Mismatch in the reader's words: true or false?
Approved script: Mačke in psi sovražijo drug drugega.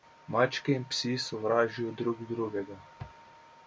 false